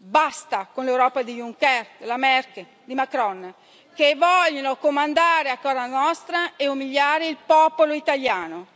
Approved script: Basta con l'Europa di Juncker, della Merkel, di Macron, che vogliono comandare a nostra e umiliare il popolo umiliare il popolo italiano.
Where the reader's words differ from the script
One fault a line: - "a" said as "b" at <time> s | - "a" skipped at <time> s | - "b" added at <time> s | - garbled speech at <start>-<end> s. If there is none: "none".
- "casa" added at 5.6 s
- "umiliare il popolo" skipped at 7.9 s